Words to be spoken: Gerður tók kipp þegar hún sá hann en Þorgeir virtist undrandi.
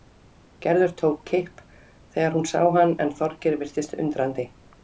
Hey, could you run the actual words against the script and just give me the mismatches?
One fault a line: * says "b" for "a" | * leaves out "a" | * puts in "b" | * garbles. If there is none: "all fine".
all fine